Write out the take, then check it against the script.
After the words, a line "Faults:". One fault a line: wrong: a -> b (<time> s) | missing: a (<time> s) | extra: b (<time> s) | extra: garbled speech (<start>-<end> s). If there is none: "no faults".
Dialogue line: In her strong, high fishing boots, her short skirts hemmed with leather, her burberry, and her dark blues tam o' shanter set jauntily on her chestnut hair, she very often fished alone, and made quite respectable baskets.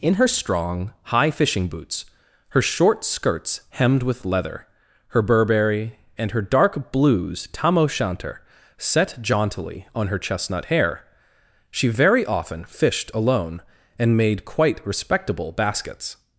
In her strong, high fishing boots, her short skirts hemmed with leather, her burberry, and her dark blues tam o' shanter set jauntily on her chestnut hair, she very often fished alone, and made quite respectable baskets.
Faults:
no faults